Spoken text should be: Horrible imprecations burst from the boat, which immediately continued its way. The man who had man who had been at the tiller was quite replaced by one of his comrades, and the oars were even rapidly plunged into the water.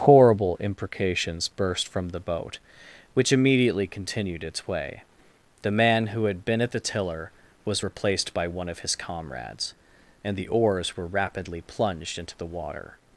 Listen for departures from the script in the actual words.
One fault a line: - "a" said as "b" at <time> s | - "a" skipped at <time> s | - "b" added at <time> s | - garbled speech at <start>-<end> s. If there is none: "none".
- "man who had" skipped at 6.4 s
- "quite" skipped at 7.8 s
- "even" skipped at 11.1 s